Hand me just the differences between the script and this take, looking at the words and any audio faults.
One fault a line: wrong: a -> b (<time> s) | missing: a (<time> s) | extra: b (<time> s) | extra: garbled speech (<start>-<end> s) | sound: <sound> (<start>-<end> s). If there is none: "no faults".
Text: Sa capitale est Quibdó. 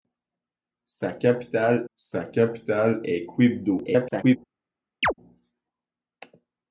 extra: sa capitale (1.9 s)
extra: garbled speech (3.8-4.4 s)
sound: chirp (5.0-5.1 s)